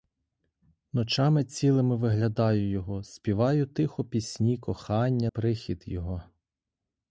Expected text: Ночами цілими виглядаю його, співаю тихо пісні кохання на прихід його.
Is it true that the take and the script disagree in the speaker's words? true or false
true